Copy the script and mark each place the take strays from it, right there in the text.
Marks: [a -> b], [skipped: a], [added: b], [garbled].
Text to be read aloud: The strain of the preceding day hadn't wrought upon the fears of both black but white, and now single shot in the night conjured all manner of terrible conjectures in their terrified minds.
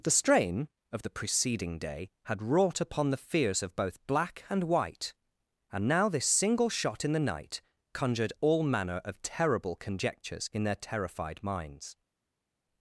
The strain of the preceding day [hadn't -> had] wrought upon the fears of both black [but -> and] white, and now [added: this] single shot in the night conjured all manner of terrible conjectures in their terrified minds.